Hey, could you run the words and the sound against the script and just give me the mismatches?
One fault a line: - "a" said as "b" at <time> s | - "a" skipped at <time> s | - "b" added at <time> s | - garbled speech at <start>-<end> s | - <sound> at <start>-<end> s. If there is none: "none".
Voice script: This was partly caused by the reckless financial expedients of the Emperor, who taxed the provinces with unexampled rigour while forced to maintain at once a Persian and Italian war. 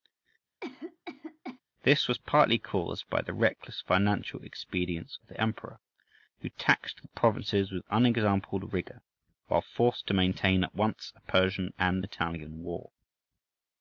- cough at 0.6-1.6 s